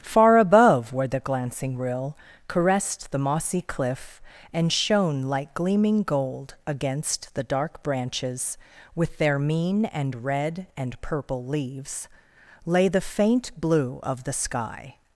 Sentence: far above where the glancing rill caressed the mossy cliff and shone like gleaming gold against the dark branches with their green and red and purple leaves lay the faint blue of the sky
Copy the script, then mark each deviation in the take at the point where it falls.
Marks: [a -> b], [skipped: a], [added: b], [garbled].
far above where the glancing rill caressed the mossy cliff and shone like gleaming gold against the dark branches with their [green -> mean] and red and purple leaves lay the faint blue of the sky